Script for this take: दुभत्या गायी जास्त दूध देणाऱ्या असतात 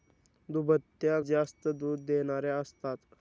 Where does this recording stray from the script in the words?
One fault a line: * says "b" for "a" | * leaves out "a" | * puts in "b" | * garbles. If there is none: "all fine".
* leaves out "गायी"